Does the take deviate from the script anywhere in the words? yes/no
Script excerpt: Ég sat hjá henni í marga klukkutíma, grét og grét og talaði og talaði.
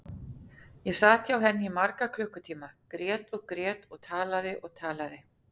no